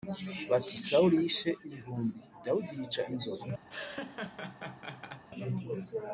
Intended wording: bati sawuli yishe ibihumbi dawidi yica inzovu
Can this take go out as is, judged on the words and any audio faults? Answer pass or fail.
fail